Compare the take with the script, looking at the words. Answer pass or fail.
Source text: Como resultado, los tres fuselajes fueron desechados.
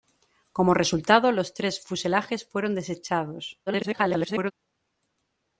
fail